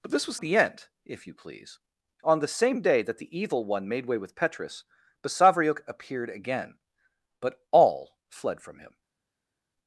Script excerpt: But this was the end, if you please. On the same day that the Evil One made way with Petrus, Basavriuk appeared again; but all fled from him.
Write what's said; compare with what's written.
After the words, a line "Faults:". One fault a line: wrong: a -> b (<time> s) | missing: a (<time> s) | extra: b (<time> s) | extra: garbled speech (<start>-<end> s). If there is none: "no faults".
But this was the end, if you please. On the same day that the Evil One made way with Petrus, Basavriuk appeared again; but all fled from him.
Faults:
no faults